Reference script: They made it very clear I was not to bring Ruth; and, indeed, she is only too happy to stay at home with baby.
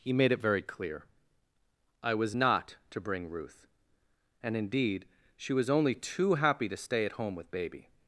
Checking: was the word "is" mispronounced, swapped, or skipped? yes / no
yes